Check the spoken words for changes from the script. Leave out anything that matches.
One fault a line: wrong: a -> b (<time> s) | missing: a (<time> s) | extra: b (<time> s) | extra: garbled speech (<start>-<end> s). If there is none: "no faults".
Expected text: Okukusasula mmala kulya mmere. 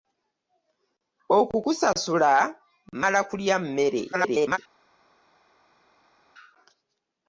extra: garbled speech (4.1-4.6 s)